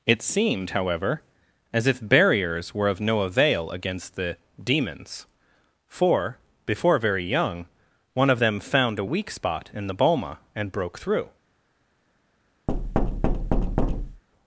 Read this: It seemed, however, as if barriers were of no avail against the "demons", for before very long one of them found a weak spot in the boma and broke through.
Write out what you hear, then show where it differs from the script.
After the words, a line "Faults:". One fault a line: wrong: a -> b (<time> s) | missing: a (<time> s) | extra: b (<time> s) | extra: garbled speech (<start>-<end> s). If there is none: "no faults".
It seemed, however, as if barriers were of no avail against the "demons", for before very young one of them found a weak spot in the boma and broke through.
Faults:
wrong: long -> young (7.2 s)